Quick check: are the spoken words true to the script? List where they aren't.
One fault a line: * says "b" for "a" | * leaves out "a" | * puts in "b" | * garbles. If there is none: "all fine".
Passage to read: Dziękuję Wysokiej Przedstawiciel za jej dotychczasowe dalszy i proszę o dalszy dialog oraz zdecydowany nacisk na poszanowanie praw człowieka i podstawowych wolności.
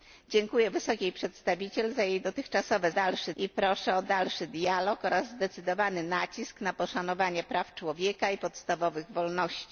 all fine